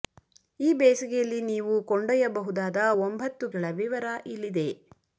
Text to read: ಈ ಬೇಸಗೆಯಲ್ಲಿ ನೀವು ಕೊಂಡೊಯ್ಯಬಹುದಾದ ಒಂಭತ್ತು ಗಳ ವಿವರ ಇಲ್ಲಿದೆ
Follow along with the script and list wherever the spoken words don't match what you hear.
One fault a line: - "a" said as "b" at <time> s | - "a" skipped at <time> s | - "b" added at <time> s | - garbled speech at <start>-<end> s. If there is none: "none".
none